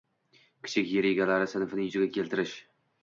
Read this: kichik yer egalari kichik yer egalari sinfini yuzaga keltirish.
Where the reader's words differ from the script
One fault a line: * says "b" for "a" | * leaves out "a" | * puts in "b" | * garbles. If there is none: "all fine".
* leaves out "kichik yer egalari"